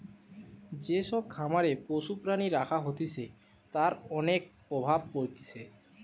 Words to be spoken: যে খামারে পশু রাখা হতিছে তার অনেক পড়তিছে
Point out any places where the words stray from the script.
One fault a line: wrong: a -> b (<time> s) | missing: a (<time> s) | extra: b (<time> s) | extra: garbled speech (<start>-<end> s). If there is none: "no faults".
extra: সব (1.0 s)
extra: প্রাণী (2.2 s)
extra: প্রভাব (4.7 s)